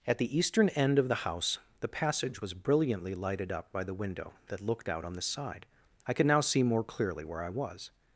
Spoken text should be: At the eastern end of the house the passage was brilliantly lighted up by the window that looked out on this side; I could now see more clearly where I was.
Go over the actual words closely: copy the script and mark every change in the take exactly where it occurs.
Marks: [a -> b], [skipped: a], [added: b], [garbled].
At the eastern end of the house the passage was brilliantly lighted up by the window that looked out on [this -> the] side; I could now see more clearly where I was.